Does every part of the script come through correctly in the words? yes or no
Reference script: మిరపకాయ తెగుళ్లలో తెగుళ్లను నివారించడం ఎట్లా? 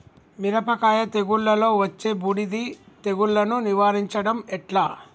no